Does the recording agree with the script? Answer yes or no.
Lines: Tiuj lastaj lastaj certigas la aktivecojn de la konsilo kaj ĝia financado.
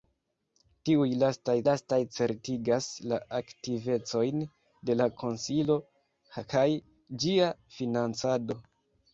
yes